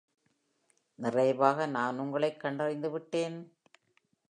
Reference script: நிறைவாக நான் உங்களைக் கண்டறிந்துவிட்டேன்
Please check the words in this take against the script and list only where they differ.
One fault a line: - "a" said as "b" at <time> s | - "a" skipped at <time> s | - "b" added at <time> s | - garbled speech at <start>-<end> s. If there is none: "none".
none